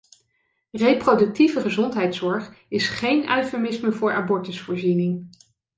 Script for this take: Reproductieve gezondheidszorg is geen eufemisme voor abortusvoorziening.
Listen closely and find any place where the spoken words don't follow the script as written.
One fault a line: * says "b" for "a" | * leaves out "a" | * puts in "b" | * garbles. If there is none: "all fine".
all fine